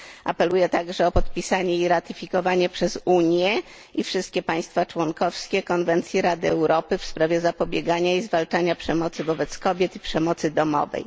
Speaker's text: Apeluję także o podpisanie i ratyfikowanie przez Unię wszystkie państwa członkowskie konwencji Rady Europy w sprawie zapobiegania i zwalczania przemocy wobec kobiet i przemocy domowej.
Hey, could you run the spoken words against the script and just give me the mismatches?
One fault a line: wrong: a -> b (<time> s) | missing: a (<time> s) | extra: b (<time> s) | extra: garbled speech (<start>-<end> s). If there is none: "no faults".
extra: i (3.9 s)